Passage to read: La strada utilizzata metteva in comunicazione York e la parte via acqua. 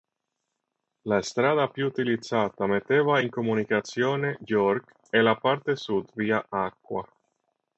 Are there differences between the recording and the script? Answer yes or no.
yes